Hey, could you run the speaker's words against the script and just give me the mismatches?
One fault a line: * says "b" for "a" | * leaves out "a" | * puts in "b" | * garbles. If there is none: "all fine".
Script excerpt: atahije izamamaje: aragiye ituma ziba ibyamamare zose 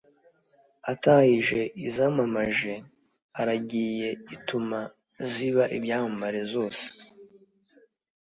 all fine